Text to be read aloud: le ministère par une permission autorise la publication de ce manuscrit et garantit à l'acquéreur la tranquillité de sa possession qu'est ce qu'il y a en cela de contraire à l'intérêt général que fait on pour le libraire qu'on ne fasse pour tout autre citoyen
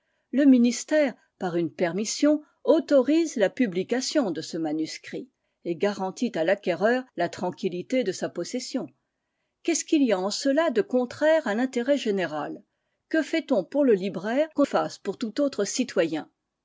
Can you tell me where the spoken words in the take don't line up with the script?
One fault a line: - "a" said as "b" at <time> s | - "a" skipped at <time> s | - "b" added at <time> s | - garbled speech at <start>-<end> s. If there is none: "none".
- "ne" skipped at 14.7 s